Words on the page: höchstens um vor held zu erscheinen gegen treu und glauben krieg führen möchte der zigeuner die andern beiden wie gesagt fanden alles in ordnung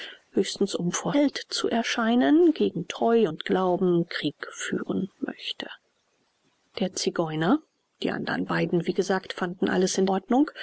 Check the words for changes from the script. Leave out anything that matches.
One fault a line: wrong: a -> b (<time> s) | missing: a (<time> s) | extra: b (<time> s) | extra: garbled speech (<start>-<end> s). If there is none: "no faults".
no faults